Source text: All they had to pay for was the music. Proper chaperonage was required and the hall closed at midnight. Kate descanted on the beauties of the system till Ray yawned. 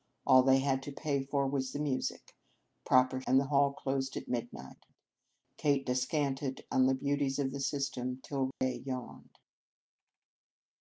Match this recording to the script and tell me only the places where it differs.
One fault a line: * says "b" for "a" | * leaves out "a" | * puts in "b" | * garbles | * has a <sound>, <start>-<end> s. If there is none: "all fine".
* leaves out "chaperonage was required"
* has a dropout, 8.5-8.6 s